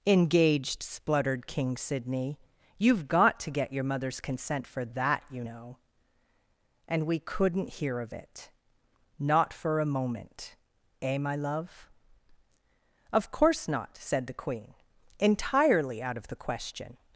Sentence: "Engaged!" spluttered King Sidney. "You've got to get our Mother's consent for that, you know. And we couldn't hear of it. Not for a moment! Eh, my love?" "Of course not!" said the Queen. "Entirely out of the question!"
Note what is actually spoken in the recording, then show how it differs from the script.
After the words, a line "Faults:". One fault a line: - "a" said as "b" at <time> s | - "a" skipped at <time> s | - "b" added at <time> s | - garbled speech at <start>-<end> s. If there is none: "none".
"Engaged!" spluttered King Sidney. "You've got to get your Mother's consent for that, you know. And we couldn't hear of it. Not for a moment! Eh, my love?" "Of course not!" said the Queen. "Entirely out of the question!"
Faults:
- "our" said as "your" at 3.7 s